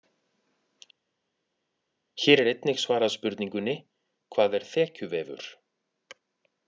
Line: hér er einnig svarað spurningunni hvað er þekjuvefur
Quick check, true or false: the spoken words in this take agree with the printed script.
true